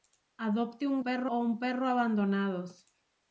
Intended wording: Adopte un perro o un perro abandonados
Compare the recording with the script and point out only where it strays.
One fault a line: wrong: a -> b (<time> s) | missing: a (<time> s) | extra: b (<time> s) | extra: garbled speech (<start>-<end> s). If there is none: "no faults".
no faults